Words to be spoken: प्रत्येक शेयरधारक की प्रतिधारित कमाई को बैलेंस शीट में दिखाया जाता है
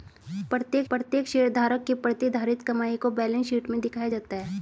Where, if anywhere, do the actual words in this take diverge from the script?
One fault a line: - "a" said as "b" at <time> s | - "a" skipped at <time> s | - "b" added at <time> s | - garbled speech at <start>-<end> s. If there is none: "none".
- "प्रत्येक" added at 0.9 s